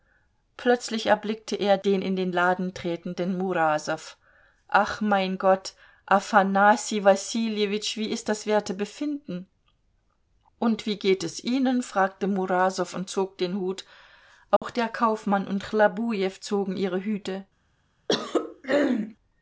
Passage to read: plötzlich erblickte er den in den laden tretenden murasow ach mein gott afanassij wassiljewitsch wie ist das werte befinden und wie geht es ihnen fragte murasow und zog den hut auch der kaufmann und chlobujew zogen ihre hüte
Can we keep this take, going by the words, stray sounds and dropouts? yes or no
no